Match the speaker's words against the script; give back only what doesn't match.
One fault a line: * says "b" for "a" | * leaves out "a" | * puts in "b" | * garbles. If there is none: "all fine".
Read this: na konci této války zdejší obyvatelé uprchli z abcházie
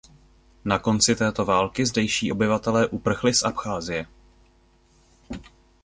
all fine